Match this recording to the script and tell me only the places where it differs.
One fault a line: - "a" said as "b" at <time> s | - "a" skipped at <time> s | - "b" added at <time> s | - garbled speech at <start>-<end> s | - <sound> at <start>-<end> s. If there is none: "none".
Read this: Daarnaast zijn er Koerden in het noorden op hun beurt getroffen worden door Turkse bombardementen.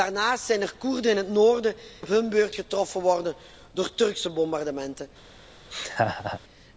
- laugh at 5.7-6.4 s